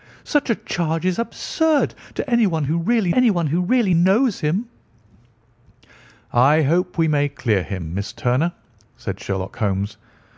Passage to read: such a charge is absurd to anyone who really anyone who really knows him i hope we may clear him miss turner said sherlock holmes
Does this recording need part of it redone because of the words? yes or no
no